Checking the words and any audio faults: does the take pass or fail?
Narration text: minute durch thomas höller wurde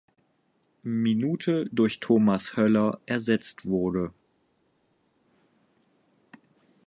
fail